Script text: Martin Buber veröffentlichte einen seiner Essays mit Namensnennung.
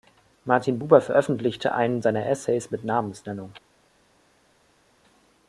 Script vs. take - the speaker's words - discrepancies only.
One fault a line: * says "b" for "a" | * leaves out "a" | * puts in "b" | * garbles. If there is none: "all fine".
all fine